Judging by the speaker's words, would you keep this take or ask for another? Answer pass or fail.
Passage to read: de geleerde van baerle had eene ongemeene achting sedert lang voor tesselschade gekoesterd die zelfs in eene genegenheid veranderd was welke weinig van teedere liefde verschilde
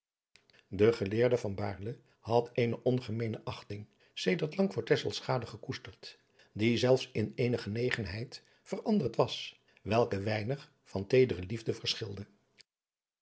pass